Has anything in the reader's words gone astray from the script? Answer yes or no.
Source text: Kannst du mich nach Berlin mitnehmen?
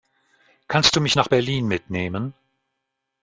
no